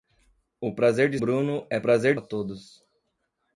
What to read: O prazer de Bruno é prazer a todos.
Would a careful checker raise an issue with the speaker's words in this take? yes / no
no